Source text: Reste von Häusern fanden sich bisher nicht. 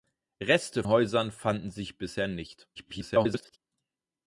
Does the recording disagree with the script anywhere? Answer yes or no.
yes